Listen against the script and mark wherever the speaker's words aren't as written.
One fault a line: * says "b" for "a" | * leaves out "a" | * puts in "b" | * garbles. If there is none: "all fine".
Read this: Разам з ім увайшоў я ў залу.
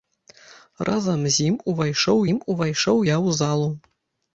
* puts in "ім увайшоў"